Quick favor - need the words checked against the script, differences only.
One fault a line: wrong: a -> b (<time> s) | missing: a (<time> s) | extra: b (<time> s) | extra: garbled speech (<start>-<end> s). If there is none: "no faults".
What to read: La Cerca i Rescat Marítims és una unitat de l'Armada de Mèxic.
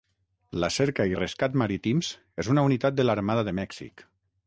no faults